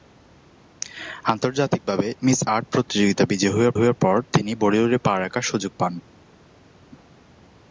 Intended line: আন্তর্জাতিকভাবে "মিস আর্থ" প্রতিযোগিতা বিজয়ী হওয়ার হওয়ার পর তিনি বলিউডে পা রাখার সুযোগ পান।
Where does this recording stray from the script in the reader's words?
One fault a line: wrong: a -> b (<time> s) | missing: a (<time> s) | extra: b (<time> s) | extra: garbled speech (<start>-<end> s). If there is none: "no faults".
no faults